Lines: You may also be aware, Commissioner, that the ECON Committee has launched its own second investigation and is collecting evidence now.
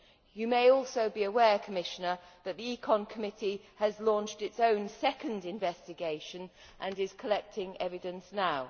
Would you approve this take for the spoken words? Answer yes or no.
yes